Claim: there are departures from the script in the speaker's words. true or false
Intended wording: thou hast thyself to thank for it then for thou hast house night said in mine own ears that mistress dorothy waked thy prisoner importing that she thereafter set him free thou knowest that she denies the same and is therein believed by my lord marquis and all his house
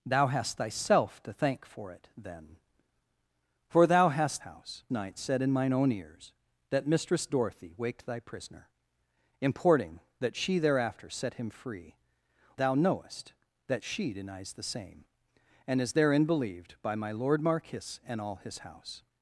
false